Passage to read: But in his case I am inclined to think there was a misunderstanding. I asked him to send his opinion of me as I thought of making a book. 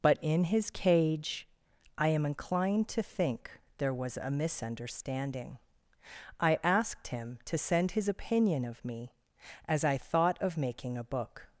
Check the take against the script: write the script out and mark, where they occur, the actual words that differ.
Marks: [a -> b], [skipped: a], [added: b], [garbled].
But in his [case -> cage] I am inclined to think there was a misunderstanding. I asked him to send his opinion of me as I thought of making a book.